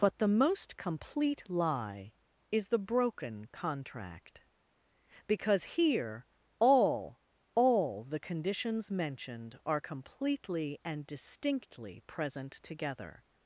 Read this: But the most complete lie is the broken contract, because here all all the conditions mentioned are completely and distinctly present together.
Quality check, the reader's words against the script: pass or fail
pass